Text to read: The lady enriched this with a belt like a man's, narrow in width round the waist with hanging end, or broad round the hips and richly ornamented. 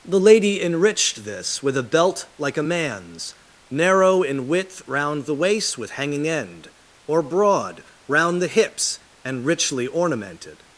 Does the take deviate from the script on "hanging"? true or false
false